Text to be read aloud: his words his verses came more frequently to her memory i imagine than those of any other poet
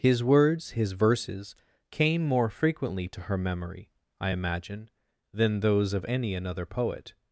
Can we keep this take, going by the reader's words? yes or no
no